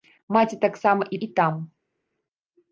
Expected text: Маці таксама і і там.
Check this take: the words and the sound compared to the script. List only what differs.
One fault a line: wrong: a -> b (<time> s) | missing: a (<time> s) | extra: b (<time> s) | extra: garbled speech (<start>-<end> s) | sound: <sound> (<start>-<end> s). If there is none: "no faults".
no faults